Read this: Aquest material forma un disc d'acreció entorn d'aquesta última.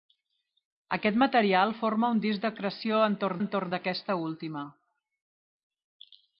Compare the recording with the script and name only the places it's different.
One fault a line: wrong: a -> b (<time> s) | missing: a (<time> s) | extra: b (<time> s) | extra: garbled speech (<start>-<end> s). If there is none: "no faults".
extra: entorn (3.4 s)